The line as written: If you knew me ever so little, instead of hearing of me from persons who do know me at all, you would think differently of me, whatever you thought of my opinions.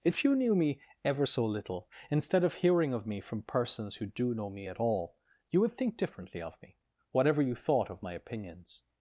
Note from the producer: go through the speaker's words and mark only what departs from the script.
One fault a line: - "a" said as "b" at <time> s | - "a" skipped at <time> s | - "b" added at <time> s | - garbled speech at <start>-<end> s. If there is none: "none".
none